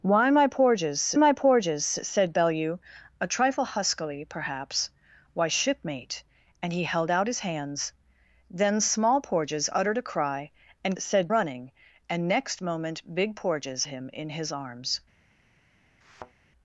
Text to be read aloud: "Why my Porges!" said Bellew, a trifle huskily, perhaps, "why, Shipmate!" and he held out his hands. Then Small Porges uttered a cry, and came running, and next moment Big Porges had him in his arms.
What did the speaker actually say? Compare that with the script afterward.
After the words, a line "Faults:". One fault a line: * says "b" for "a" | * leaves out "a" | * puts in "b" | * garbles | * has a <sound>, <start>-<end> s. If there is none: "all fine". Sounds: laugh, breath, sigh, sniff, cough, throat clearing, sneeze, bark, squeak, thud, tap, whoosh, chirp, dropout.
"Why my Porges my Porges!" said Bellew, a trifle huskily, perhaps, "why, Shipmate!" and he held out his hands. Then Small Porges uttered a cry, and said running, and next moment Big Porges him in his arms.
Faults:
* puts in "my Porges"
* says "said" for "came"
* leaves out "had"
* has a thud, 16.0-16.3 s